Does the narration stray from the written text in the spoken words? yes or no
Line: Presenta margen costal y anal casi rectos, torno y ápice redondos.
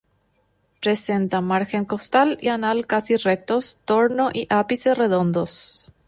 no